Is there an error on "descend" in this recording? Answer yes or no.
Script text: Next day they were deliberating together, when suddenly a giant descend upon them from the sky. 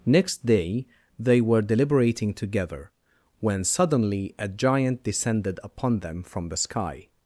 yes